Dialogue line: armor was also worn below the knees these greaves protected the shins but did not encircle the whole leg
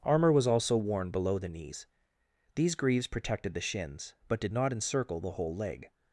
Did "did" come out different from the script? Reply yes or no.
no